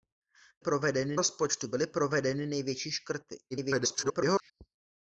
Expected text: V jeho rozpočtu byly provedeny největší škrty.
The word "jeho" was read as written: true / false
false